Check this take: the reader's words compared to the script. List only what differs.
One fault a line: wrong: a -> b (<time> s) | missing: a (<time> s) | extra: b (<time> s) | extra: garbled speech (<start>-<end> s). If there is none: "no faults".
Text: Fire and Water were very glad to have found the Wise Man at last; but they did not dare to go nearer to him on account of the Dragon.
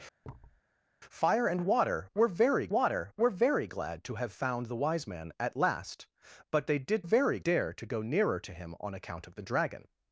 extra: Water were very (2.7 s)
wrong: not -> very (7.0 s)